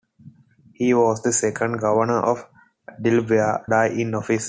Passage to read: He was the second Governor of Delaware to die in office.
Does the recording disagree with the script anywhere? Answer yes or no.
yes